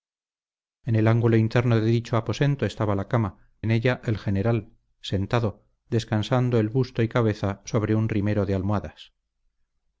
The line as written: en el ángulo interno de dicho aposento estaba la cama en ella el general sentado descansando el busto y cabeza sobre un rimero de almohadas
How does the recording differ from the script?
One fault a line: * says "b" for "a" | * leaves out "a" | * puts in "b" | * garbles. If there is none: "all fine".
all fine